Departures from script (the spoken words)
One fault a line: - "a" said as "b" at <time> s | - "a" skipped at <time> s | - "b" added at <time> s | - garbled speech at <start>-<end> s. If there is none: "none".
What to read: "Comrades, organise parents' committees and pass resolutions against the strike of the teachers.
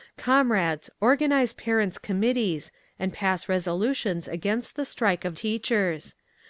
- "the" skipped at 5.3 s